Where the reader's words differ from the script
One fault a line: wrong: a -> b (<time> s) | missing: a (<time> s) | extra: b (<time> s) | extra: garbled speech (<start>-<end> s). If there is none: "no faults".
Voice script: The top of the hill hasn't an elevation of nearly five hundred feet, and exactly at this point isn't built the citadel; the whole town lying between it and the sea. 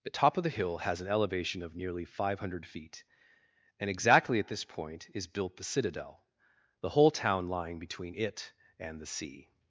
wrong: hasn't -> has (0.8 s)
wrong: isn't -> is (5.1 s)